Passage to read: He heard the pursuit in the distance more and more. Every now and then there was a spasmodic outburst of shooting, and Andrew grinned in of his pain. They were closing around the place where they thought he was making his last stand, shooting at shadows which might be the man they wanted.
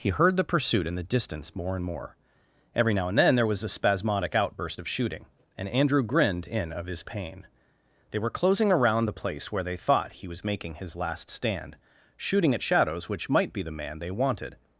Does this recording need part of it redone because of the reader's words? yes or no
no